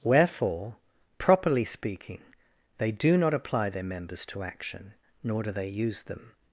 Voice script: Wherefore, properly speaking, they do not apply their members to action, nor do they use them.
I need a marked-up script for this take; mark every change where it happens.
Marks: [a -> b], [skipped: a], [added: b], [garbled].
Wherefore, properly speaking, they do not apply their members to action, nor do they use them.